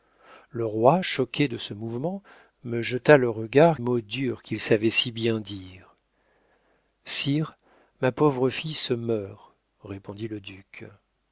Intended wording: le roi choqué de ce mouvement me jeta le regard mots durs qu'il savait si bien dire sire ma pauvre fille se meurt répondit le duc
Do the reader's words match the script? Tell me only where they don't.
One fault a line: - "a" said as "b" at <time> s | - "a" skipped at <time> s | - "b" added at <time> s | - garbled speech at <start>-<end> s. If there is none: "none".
none